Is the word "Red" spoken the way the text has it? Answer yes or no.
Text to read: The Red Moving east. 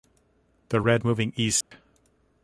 yes